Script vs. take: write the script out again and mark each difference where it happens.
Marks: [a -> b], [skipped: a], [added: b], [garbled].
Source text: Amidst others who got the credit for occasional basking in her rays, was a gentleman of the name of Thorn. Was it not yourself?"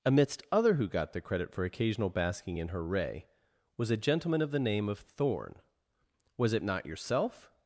Amidst [others -> other] who got the credit for occasional basking in her [rays, -> ray] was a gentleman of the name of Thorn. Was it not yourself?"